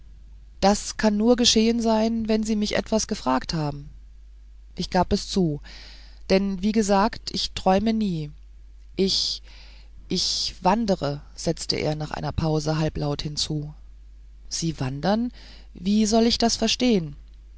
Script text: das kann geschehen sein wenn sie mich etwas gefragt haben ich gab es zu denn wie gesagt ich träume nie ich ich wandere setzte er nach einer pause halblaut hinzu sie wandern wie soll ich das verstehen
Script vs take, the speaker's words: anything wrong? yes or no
yes